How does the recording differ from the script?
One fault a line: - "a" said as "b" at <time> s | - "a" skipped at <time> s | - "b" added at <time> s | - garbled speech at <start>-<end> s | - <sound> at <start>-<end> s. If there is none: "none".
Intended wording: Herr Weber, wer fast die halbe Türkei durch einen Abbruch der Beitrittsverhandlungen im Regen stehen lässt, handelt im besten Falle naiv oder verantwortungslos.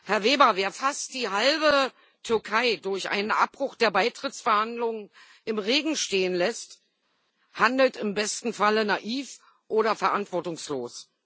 none